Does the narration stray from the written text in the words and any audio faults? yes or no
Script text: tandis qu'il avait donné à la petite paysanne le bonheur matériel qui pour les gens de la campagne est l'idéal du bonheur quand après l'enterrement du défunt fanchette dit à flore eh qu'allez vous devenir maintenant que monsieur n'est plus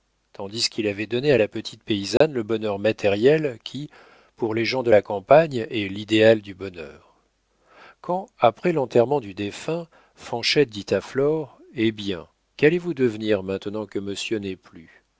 yes